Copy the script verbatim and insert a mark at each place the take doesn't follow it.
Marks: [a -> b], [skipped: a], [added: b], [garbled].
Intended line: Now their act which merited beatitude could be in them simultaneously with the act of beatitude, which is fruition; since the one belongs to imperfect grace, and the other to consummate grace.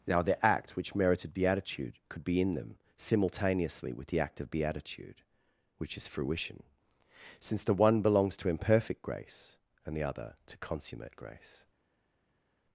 Now their act which merited beatitude could be in them simultaneously with the act of beatitude, which is fruition; since the one belongs to imperfect grace, and the other to consummate grace.